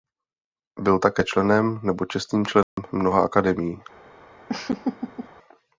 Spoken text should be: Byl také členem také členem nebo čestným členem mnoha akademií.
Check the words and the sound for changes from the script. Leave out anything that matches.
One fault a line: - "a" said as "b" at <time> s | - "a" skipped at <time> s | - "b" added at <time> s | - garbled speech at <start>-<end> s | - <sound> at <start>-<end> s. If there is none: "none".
- "také členem" skipped at 1.8 s
- dropout at 2.6-2.8 s
- laugh at 4.5-5.3 s